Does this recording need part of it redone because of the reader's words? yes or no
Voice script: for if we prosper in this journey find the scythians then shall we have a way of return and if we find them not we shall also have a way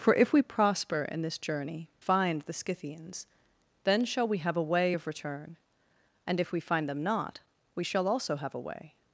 no